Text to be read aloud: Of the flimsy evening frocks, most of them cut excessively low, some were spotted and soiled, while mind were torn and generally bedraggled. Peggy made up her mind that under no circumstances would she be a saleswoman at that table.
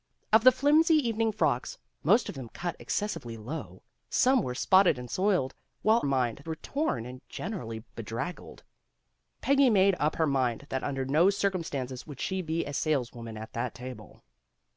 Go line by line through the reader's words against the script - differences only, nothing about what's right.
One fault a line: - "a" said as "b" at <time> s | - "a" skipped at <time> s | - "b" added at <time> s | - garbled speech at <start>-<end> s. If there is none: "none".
none